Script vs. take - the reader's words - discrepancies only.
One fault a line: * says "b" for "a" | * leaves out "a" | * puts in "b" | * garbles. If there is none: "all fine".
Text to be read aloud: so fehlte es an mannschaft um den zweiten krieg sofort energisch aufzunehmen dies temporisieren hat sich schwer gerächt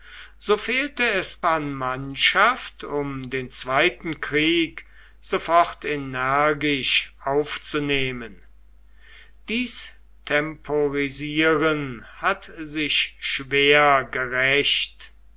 all fine